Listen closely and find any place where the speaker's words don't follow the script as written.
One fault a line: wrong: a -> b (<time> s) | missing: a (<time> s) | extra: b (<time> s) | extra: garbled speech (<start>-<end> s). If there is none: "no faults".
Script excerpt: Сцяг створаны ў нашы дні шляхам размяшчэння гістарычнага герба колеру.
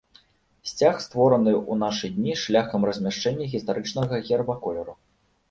no faults